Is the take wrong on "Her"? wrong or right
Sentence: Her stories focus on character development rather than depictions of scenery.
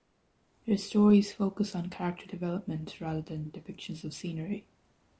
right